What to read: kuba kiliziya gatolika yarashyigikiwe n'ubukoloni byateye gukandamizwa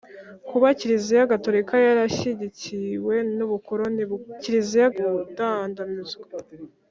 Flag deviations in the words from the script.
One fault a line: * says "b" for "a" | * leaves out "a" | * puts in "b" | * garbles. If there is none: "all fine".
* says "kiliziya" for "byateye"